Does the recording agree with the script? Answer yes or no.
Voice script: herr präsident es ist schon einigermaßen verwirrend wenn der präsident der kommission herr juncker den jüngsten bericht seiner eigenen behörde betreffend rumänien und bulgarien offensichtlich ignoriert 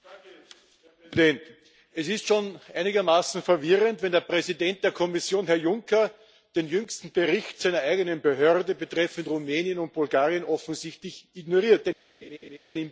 yes